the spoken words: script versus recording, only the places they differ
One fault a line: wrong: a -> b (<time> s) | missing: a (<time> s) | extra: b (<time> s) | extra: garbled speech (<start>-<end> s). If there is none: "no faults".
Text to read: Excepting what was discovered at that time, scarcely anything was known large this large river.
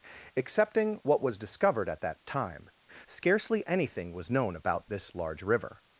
wrong: large -> about (4.5 s)